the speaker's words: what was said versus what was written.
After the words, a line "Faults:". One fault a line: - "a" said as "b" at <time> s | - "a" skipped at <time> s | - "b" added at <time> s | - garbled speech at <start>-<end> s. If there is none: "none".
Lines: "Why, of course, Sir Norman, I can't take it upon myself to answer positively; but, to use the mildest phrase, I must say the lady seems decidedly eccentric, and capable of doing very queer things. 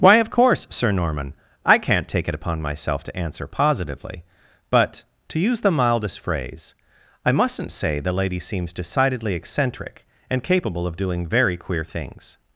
"Why, of course, Sir Norman, I can't take it upon myself to answer positively; but, to use the mildest phrase, I mustn't say the lady seems decidedly eccentric, and capable of doing very queer things.
Faults:
- "must" said as "mustn't" at 7.3 s